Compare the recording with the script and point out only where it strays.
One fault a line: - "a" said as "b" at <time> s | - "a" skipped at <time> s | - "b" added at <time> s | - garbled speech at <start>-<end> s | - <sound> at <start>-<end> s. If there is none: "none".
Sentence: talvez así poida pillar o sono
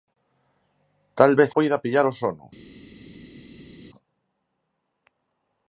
- "así" skipped at 1.5 s